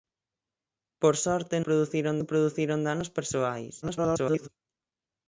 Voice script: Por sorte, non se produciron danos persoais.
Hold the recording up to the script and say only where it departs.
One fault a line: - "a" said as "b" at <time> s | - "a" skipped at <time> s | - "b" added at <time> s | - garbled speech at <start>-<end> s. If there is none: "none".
- "non" said as "produciron" at 1.7 s
- garbled speech at 3.8-4.5 s